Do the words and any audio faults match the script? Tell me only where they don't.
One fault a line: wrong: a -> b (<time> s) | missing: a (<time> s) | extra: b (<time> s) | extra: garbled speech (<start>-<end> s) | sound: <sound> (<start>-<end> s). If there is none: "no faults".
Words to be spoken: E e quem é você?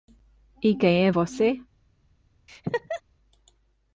missing: e (0.8 s)
sound: laugh (2.5-3.0 s)